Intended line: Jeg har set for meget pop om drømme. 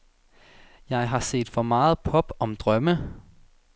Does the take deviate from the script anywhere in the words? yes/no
no